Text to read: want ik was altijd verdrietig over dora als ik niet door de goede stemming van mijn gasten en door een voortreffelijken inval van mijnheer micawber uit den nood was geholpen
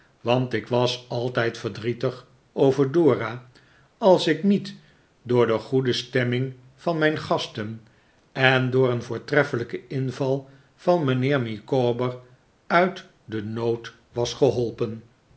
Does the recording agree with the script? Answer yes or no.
yes